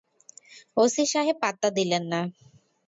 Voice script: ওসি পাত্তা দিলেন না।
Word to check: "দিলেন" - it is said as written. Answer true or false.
true